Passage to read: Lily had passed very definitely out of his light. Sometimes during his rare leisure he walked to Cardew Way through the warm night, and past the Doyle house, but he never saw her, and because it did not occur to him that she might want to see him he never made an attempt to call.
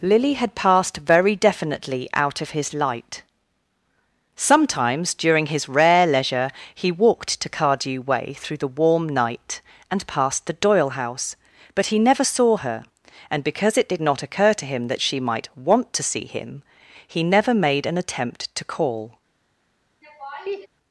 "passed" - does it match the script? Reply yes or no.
yes